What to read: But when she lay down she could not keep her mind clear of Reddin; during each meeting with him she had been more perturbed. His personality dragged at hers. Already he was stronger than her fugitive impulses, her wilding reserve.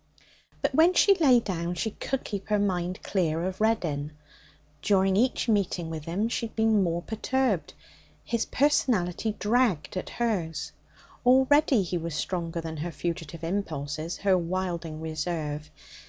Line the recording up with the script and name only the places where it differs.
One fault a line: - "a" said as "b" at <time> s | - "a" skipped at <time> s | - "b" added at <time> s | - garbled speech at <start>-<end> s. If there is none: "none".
- "not" skipped at 2.2 s